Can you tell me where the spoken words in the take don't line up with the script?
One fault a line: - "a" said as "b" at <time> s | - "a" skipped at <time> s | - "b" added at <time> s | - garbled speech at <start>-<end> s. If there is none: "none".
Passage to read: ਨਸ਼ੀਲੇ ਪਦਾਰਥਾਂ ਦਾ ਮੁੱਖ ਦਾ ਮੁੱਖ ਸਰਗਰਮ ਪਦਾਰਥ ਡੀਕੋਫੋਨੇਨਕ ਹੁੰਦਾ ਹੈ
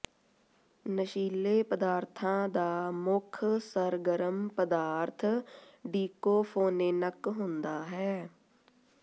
- "ਦਾ ਮੁੱਖ" skipped at 3.4 s